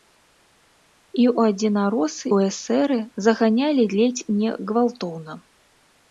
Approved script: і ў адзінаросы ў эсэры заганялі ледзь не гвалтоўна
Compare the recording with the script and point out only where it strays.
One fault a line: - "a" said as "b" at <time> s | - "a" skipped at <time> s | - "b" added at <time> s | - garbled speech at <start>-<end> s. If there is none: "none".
none